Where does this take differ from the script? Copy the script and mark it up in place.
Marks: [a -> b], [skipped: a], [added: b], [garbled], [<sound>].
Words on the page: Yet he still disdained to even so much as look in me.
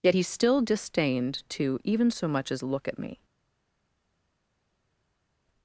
Yet he still disdained to even so much as look [in -> at] me.